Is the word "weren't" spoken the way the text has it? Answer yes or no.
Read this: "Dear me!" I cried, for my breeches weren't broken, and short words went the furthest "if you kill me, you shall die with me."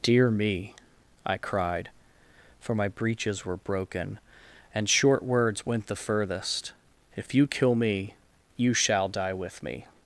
no